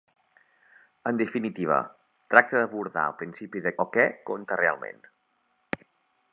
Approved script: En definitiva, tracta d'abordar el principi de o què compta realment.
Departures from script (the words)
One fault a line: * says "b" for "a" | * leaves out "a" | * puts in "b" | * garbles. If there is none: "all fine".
all fine